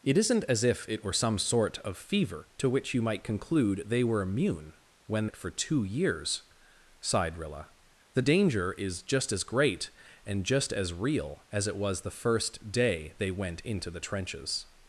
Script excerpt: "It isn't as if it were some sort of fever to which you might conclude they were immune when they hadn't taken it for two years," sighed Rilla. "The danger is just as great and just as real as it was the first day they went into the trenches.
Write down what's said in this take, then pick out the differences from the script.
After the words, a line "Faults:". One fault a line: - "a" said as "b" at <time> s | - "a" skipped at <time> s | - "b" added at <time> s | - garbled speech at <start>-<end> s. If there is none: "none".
"It isn't as if it were some sort of fever to which you might conclude they were immune when it for two years," sighed Rilla. "The danger is just as great and just as real as it was the first day they went into the trenches.
Faults:
- "they hadn't taken" skipped at 5.3 s